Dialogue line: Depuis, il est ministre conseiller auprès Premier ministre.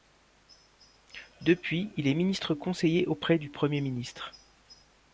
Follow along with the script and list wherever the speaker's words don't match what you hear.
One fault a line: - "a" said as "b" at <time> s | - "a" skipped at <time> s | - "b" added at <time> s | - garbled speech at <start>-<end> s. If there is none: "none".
- "du" added at 3.4 s